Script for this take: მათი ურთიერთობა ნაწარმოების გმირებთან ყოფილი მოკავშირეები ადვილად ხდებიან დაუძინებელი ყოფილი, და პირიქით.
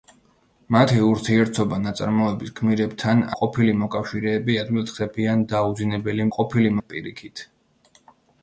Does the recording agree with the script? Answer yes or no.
yes